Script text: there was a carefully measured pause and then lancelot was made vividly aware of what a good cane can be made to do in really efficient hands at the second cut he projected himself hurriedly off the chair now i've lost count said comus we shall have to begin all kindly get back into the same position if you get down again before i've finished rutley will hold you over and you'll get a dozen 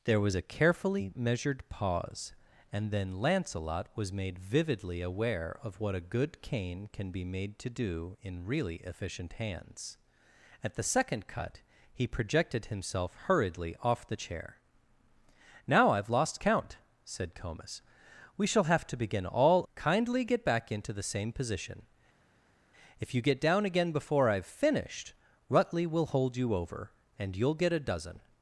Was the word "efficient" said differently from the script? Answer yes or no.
no